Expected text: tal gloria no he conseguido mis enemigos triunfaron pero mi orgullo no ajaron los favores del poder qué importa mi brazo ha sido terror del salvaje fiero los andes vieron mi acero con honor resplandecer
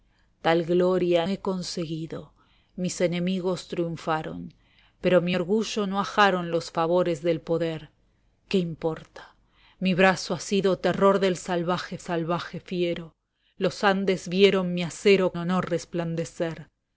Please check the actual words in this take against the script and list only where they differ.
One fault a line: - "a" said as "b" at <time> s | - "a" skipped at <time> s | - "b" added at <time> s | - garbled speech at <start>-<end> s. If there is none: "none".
- "no" skipped at 1.3 s
- "salvaje" added at 12.0 s
- "con" skipped at 15.4 s